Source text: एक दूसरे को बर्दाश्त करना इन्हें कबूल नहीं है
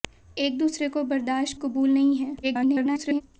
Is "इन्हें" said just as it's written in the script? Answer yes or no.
no